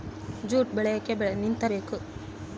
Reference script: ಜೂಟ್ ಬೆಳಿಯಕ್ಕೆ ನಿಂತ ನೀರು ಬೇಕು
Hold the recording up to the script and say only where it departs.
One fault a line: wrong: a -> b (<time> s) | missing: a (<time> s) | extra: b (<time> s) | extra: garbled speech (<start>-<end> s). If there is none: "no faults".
missing: ನೀರು (1.6 s)